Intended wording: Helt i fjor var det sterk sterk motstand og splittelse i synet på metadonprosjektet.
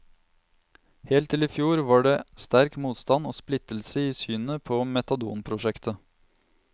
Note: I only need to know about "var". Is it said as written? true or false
true